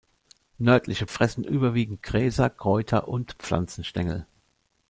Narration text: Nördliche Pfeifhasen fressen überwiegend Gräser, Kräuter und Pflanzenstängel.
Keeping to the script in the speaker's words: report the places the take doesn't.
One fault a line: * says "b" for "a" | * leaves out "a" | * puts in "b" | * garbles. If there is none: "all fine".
* leaves out "Pfeifhasen"